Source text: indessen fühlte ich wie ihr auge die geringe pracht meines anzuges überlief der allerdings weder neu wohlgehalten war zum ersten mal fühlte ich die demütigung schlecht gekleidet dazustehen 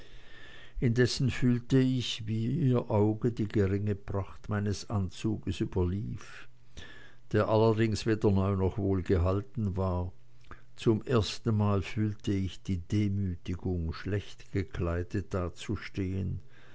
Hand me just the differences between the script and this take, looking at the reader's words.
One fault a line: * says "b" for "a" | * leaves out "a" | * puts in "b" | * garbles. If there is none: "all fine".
* puts in "noch"